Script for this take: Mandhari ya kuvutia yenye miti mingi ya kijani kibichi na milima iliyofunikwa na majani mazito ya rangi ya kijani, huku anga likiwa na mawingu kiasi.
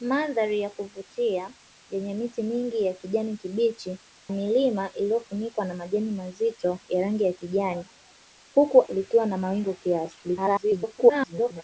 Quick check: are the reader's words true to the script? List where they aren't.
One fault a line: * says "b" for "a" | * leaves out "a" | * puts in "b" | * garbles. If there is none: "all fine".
* leaves out "na"
* leaves out "anga"
* garbles